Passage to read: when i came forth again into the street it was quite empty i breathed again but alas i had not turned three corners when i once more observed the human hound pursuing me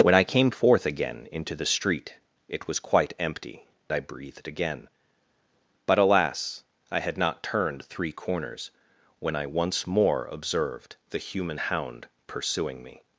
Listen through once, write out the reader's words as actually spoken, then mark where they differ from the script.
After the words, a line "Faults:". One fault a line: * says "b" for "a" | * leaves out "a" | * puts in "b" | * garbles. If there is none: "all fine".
when i came forth again into the street it was quite empty i breathed again but alas i had not turned three corners when i once more observed the human hound pursuing me
Faults:
all fine